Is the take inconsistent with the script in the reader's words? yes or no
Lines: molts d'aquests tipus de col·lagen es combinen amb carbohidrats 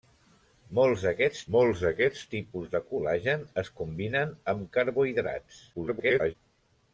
yes